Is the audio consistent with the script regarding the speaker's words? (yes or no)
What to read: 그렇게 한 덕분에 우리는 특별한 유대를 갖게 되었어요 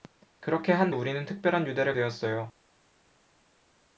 no